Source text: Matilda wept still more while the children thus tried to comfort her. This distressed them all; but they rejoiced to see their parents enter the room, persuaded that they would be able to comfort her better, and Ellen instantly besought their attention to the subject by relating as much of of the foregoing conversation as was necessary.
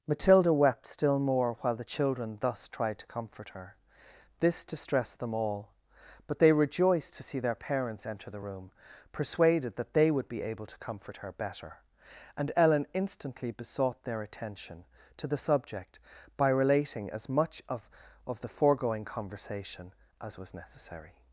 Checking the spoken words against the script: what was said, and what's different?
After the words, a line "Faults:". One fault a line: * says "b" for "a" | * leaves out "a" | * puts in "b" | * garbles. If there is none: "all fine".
Matilda wept still more while the children thus tried to comfort her. This distressed them all; but they rejoiced to see their parents enter the room, persuaded that they would be able to comfort her better, and Ellen instantly besought their attention to the subject by relating as much of of the foregoing conversation as was necessary.
Faults:
all fine